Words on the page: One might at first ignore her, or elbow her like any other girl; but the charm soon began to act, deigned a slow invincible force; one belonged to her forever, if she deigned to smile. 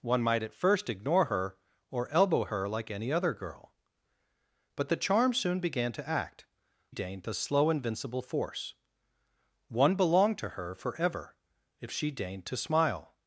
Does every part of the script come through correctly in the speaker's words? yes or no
yes